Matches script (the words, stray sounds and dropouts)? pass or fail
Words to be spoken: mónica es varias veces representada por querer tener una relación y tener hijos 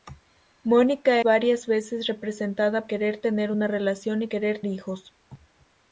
fail